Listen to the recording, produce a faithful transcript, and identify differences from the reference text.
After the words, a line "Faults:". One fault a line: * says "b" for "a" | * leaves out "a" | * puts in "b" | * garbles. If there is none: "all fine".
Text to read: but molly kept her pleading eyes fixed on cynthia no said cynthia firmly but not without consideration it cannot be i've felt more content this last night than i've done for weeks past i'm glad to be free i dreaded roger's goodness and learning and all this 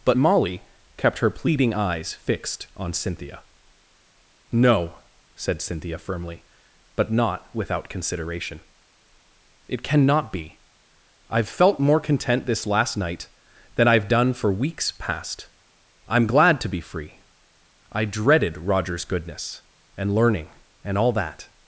but molly kept her pleading eyes fixed on cynthia no said cynthia firmly but not without consideration it cannot be i've felt more content this last night than i've done for weeks past i'm glad to be free i dreaded roger's goodness and learning and all that
Faults:
* says "that" for "this"